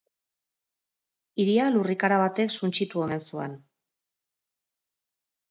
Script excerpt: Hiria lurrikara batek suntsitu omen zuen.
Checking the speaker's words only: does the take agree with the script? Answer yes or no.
yes